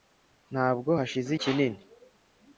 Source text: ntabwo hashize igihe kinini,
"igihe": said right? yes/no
no